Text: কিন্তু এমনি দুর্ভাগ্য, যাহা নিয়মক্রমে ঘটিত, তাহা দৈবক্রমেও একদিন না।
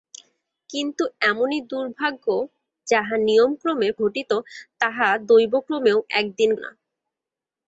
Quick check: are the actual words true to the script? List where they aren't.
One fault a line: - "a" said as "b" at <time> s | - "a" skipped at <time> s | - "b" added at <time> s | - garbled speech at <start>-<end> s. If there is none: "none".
none